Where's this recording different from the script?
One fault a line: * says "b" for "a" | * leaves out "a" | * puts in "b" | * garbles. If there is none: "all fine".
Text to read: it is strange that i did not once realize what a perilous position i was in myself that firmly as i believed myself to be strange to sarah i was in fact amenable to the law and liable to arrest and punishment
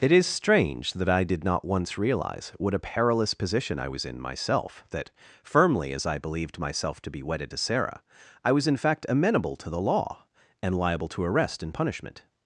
* says "wedded" for "strange"